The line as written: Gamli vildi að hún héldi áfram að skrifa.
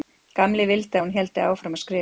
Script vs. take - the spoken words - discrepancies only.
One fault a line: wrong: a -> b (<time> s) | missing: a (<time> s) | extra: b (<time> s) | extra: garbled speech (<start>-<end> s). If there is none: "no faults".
no faults